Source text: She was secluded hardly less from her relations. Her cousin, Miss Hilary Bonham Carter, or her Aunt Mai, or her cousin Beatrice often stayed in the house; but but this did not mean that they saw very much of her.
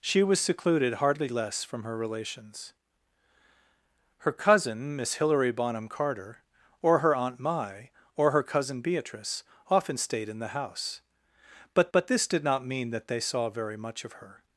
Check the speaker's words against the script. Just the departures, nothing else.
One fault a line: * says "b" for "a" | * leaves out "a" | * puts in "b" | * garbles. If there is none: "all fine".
all fine